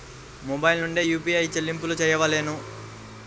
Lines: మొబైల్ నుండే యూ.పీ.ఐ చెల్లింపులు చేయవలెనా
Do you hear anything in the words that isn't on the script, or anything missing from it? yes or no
no